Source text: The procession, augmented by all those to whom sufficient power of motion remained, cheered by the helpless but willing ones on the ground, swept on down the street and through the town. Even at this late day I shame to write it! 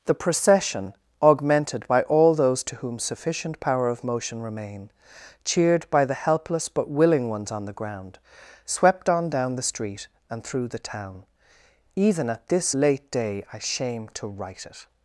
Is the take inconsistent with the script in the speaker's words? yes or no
yes